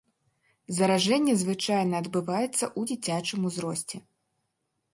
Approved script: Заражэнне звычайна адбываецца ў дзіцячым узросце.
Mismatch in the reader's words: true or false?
false